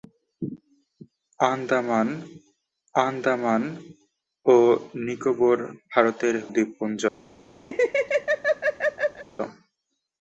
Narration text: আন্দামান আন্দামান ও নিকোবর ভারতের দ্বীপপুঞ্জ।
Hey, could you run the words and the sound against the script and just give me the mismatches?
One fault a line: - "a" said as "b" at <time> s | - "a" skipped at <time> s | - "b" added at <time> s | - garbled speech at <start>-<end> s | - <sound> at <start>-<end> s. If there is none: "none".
- laugh at 7.7-9.3 s